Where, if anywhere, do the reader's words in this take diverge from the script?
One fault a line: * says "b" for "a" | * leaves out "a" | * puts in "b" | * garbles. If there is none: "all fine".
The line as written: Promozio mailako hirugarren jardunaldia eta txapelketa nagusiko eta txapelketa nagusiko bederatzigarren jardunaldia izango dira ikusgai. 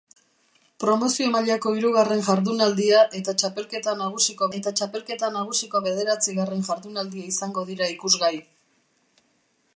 all fine